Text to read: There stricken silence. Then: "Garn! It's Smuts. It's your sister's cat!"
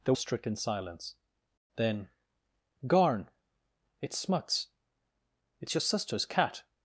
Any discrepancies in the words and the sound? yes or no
no